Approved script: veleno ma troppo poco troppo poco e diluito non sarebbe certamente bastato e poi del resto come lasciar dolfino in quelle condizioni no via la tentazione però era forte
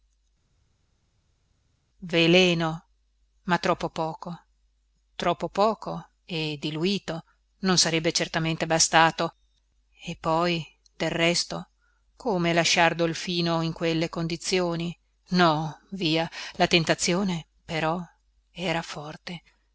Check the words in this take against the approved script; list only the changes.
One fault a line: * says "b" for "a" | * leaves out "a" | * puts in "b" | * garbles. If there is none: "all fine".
all fine